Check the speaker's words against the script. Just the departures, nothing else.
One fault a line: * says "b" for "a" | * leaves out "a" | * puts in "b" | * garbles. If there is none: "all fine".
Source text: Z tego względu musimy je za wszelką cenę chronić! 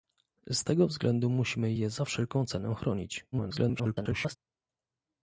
* garbles